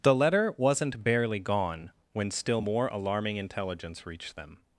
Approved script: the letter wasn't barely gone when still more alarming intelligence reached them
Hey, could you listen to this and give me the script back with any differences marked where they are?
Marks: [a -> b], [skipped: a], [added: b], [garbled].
the letter wasn't barely gone when still more alarming intelligence reached them